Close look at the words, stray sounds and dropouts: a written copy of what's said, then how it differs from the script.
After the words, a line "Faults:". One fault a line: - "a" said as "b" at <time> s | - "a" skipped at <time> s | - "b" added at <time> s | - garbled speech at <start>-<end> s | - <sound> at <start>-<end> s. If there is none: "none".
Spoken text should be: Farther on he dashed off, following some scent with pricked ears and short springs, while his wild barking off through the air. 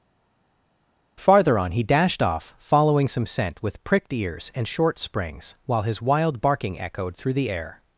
Farther on he dashed off, following some scent with pricked ears and short springs, while his wild barking echoed through the air.
Faults:
- "off" said as "echoed" at 6.8 s